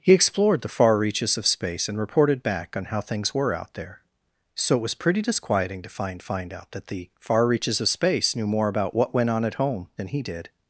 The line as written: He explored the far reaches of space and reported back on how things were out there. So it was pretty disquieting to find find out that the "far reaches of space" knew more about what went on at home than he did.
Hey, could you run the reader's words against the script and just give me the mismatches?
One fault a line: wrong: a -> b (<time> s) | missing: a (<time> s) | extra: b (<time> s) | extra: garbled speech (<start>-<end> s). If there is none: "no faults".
no faults